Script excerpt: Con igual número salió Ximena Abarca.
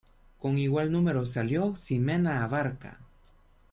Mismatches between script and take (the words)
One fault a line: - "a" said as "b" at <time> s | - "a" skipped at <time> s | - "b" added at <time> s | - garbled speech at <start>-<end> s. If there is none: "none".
none